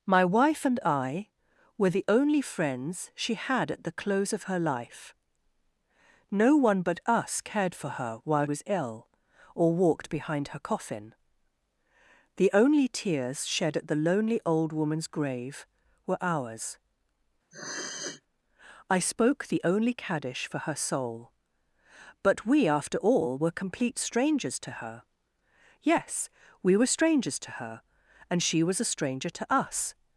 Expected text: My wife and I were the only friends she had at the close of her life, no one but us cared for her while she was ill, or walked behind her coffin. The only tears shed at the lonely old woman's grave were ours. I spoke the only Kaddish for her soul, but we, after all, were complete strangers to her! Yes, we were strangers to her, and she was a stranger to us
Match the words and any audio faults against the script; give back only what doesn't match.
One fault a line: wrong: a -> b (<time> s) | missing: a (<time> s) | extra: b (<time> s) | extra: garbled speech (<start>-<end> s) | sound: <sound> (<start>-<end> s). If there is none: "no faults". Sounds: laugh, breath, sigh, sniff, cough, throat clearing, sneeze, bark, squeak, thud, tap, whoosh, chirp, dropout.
missing: she (8.5 s)
sound: sniff (17.5-18.2 s)